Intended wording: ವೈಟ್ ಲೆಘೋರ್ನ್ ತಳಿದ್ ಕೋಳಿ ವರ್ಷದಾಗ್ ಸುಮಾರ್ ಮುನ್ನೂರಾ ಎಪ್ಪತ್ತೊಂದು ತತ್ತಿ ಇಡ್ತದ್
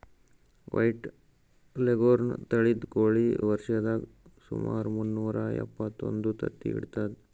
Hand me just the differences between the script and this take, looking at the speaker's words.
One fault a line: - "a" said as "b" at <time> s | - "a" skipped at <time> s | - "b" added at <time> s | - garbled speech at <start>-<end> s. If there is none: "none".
none